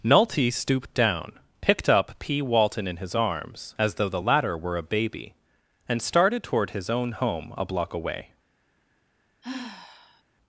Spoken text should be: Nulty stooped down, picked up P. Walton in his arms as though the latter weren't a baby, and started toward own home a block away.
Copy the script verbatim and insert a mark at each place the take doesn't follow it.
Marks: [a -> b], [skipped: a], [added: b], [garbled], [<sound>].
Nulty stooped down, picked up P. Walton in his arms as though the latter [weren't -> were] a baby, and started toward [added: his] own home a block away. [sigh]